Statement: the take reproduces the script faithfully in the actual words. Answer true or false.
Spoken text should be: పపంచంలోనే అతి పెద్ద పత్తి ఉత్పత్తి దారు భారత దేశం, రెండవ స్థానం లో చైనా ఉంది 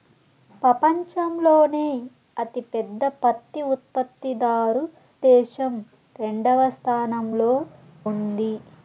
false